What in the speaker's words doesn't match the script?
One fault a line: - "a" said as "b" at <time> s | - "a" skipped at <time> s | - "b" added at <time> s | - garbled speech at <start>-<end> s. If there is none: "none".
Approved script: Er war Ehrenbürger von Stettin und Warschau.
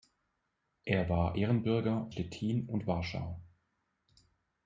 - "von" skipped at 2.1 s